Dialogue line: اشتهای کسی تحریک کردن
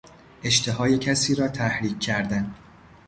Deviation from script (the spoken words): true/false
true